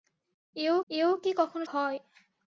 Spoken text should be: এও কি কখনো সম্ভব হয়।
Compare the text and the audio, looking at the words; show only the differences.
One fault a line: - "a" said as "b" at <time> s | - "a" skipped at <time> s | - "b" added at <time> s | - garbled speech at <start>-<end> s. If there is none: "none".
- "এও" added at 0.9 s
- "সম্ভব" skipped at 1.6 s